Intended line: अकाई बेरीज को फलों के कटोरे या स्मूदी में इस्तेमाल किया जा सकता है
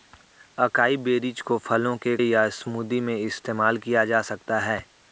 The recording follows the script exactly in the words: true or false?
false